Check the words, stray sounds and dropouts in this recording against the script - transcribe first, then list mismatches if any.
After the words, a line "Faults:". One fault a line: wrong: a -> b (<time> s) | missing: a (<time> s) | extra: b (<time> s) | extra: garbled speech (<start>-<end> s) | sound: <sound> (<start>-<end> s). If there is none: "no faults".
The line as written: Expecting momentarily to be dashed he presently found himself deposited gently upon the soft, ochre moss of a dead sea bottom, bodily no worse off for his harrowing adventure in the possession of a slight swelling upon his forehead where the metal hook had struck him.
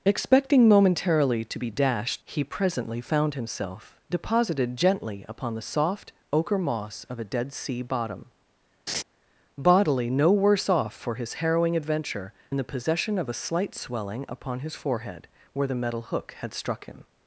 Expecting momentarily to be dashed he presently found himself deposited gently upon the soft, ochre moss of a dead sea bottom, bodily no worse off for his harrowing adventure in the possession of a slight swelling upon his forehead where the metal hook had struck him.
Faults:
sound: laugh (8.9-9.0 s)